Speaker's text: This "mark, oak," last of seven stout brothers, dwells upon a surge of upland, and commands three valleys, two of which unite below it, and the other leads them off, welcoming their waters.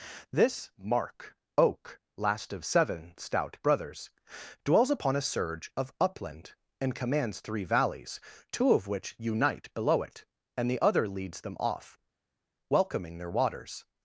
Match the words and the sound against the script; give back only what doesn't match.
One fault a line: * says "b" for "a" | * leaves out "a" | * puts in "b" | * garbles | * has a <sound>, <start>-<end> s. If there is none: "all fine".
all fine